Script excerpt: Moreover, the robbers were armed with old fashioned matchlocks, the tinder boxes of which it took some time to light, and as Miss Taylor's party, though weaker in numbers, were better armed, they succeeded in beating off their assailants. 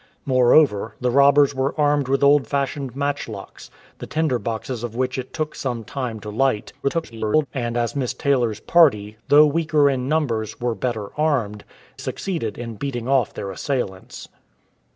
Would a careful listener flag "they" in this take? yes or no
yes